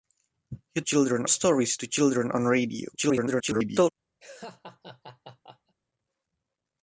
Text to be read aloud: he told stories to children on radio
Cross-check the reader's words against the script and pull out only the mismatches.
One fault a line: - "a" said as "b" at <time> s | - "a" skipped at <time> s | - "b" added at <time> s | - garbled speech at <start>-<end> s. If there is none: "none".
- "told" said as "children" at 0.8 s
- garbled speech at 3.0-3.9 s